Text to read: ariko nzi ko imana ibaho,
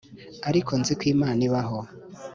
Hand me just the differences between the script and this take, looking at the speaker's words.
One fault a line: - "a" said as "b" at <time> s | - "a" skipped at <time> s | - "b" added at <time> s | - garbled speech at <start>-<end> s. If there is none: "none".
none